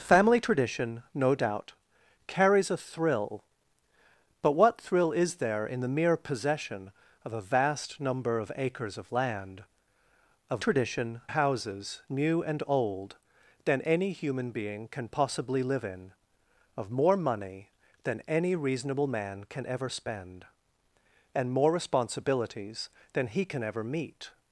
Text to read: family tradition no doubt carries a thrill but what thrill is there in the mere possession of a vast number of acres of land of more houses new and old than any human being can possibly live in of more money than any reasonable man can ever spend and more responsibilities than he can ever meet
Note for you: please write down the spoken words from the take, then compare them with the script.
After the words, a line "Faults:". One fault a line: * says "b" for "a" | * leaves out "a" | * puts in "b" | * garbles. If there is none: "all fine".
family tradition no doubt carries a thrill but what thrill is there in the mere possession of a vast number of acres of land of tradition houses new and old than any human being can possibly live in of more money than any reasonable man can ever spend and more responsibilities than he can ever meet
Faults:
* says "tradition" for "more"